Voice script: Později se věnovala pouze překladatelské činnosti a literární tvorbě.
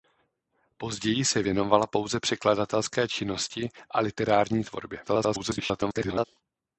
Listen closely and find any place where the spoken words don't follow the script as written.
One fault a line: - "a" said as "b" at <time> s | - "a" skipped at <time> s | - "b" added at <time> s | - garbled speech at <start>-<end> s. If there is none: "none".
- garbled speech at 5.1-6.3 s